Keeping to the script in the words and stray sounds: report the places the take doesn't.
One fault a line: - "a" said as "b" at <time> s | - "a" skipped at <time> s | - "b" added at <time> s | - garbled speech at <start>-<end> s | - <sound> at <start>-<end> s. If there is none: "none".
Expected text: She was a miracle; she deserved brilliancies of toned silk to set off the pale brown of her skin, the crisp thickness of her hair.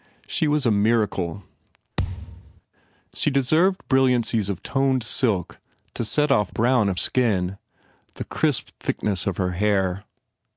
- thud at 2.0-2.6 s
- "the pale" skipped at 6.5 s
- "her" skipped at 7.0 s